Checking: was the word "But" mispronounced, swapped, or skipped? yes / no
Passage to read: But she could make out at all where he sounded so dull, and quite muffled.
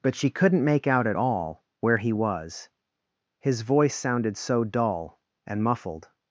no